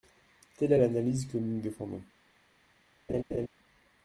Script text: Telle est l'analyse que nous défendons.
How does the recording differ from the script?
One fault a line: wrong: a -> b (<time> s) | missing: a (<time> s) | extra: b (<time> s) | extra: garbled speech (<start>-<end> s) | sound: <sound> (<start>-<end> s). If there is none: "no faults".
sound: laugh (3.1-3.5 s)